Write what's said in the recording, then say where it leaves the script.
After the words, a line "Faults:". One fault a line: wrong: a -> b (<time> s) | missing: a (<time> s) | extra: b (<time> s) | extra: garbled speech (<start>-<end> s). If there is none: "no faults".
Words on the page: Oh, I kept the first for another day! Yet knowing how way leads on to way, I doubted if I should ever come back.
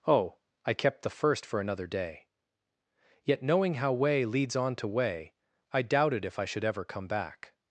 Oh, I kept the first for another day! Yet knowing how way leads on to way, I doubted if I should ever come back.
Faults:
no faults